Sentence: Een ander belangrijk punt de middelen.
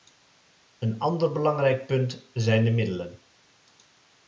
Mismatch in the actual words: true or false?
true